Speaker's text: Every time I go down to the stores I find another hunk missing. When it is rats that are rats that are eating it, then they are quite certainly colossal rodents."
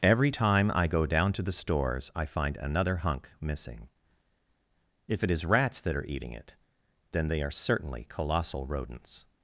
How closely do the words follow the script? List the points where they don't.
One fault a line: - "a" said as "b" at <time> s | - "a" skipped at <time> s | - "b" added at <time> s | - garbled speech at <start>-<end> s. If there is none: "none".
- "When" said as "If" at 5.1 s
- "rats that are" skipped at 6.1 s
- "quite" skipped at 7.5 s